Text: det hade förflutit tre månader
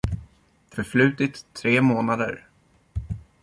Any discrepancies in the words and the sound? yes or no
yes